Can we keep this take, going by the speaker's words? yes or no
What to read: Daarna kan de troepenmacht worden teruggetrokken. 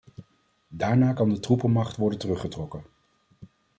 yes